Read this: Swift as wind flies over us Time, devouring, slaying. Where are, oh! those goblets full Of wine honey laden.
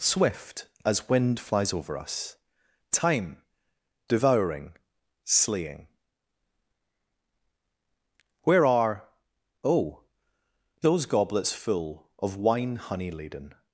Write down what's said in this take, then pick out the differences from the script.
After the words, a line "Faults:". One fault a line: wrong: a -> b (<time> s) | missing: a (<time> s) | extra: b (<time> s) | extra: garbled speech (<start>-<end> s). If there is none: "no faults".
Swift as wind flies over us Time, devouring, slaying. Where are, oh! those goblets full Of wine honey laden.
Faults:
no faults